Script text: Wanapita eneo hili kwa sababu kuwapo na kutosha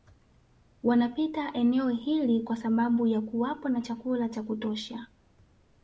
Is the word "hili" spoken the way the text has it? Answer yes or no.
yes